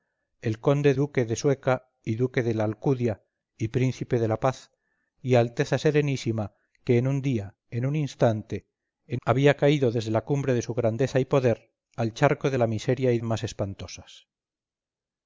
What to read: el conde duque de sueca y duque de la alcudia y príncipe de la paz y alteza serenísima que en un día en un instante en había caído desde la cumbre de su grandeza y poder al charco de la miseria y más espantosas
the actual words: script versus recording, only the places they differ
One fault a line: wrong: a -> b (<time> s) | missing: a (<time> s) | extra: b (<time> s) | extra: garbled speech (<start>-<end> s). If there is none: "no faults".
no faults